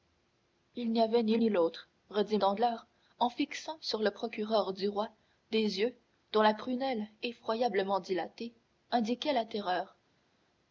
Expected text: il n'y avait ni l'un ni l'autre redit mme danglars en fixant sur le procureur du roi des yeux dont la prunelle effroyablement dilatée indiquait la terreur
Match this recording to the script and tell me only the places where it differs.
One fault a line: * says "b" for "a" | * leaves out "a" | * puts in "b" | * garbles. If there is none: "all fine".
* leaves out "l'un"
* leaves out "mme"